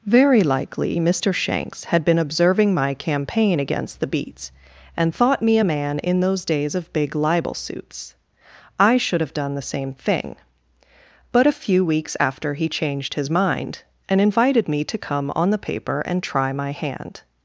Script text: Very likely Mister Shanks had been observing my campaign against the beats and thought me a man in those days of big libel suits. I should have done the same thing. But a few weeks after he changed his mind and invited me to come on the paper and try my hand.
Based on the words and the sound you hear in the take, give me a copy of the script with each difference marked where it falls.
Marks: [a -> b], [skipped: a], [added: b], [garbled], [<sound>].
Very likely Mister Shanks had been observing my campaign against the beats and thought me a man in those days of big libel suits. I should have done the same thing. But a few weeks after he changed his mind and invited me to come on the paper and try my hand.